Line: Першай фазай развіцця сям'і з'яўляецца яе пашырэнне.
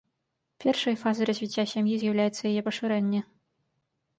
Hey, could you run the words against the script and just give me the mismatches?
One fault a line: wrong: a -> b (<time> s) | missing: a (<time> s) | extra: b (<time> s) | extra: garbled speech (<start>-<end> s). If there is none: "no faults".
no faults